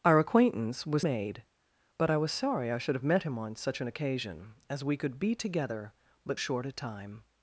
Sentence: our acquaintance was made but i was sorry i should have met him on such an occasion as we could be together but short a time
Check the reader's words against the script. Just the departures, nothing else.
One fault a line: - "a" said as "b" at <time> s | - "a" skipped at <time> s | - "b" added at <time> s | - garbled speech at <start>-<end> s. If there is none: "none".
none